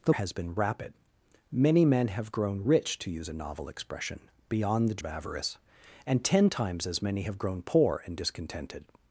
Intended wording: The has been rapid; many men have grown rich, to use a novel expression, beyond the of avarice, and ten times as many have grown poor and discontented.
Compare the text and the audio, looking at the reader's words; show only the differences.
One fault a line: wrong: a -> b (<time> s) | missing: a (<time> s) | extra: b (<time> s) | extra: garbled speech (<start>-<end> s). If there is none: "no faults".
no faults